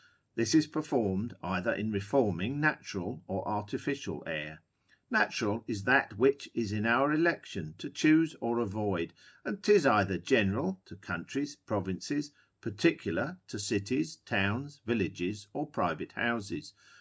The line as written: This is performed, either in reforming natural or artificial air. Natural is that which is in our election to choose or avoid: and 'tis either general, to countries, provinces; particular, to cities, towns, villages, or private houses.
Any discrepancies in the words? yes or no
no